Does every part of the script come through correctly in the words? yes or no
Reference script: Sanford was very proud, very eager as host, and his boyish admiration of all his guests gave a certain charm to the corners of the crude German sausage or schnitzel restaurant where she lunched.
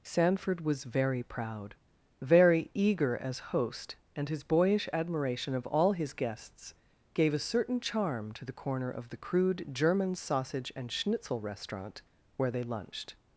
no